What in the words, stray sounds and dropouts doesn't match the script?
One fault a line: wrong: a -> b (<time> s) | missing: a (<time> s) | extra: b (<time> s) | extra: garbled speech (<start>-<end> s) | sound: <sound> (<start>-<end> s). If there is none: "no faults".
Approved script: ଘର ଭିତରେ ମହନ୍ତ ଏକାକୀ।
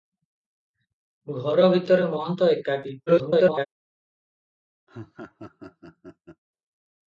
extra: garbled speech (3.1-3.7 s)
sound: laugh (4.9-6.4 s)